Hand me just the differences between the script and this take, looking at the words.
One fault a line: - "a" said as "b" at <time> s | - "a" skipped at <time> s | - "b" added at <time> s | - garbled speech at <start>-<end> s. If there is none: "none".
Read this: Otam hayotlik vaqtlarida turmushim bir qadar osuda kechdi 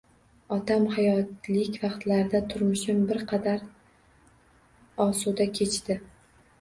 none